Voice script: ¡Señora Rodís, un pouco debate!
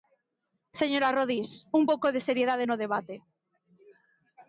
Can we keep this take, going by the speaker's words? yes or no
no